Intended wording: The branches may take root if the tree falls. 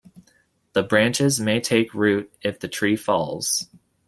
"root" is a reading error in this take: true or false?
false